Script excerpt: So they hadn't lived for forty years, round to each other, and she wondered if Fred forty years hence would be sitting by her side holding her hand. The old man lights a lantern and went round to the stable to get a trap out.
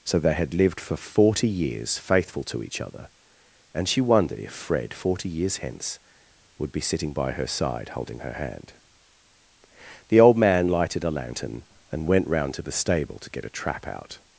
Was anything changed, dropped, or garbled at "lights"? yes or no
yes